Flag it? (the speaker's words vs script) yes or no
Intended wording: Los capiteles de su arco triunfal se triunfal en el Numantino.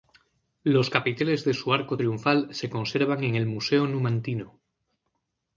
yes